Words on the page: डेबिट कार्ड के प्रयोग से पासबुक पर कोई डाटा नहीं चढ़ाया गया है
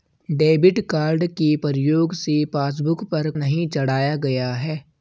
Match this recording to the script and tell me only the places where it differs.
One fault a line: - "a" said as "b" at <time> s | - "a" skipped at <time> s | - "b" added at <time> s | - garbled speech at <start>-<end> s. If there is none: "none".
- "कोई डाटा" skipped at 3.3 s